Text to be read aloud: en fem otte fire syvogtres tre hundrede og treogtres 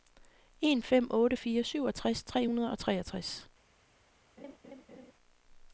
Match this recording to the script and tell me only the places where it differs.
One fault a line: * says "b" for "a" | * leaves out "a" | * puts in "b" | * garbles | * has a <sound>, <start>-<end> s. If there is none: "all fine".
* has a laugh, 4.4-5.1 s